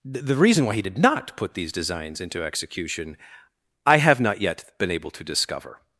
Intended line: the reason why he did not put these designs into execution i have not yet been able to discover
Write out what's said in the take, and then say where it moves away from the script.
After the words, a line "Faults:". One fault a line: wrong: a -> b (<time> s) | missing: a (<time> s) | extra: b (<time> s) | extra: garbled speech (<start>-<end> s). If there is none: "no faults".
the reason why he did not put these designs into execution i have not yet been able to discover
Faults:
no faults